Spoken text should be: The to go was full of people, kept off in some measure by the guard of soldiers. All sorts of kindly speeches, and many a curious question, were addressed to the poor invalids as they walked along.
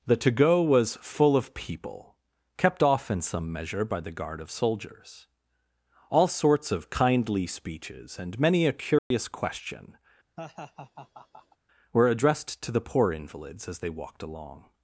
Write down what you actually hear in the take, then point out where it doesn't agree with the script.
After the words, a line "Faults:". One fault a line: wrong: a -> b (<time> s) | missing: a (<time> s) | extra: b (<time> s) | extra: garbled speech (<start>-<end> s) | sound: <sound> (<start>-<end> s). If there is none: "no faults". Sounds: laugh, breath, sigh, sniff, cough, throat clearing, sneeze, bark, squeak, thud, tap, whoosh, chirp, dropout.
The to go was full of people, kept off in some measure by the guard of soldiers. All sorts of kindly speeches, and many a curious question, were addressed to the poor invalids as they walked along.
Faults:
sound: dropout (9.0-9.1 s)
sound: laugh (10.4-11.6 s)